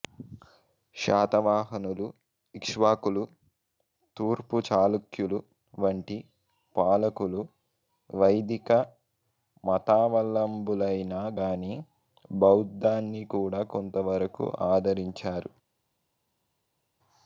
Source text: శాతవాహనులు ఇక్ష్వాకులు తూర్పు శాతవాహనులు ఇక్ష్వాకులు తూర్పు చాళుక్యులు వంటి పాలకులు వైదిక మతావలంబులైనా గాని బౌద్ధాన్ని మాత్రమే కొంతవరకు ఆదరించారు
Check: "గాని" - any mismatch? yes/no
no